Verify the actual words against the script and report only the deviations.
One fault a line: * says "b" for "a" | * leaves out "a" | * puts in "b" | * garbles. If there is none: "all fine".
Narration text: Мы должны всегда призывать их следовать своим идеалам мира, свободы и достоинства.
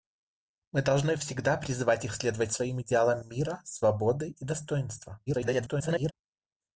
* garbles